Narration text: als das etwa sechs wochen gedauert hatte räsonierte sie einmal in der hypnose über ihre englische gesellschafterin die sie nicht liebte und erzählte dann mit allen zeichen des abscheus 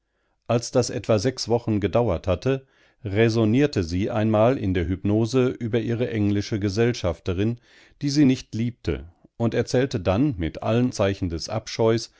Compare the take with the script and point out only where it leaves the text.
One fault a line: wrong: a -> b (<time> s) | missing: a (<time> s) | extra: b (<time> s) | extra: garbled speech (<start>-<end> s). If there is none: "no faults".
no faults